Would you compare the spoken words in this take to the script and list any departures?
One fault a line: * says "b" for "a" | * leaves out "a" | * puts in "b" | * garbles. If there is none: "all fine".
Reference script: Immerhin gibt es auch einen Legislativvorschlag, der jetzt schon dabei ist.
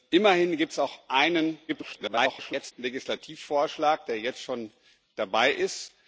* garbles